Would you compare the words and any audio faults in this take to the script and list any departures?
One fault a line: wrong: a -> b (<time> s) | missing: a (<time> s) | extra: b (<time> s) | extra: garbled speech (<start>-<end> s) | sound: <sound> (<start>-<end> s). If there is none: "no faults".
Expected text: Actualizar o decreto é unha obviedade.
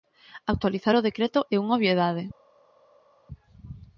no faults